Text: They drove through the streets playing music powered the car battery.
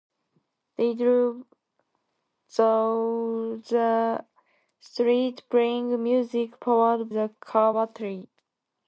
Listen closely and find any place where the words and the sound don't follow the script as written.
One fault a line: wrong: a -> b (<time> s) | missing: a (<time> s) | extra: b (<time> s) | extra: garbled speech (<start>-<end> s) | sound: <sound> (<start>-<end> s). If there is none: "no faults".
no faults